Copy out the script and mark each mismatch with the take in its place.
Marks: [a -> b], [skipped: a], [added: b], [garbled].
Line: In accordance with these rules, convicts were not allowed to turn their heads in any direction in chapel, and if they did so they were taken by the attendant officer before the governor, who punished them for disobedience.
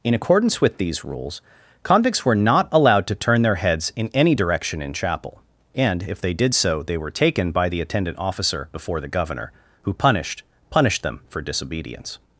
In accordance with these rules, convicts were not allowed to turn their heads in any direction in chapel, and if they did so they were taken by the attendant officer before the governor, who punished [added: punished] them for disobedience.